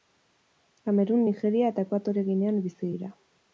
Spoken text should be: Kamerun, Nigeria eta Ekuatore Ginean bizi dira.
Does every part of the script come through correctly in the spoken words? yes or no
yes